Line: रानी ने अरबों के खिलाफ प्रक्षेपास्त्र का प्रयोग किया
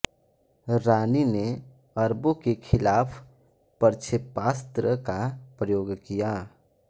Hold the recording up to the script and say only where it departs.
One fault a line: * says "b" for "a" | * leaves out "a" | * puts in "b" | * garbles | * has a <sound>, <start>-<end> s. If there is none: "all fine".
all fine